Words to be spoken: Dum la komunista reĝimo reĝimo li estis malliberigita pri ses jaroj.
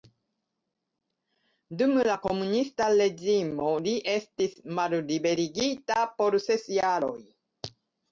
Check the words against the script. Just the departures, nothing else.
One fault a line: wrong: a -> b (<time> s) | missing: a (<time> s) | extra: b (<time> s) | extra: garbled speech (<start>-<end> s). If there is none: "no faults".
missing: reĝimo (3.7 s)
wrong: pri -> por (6.2 s)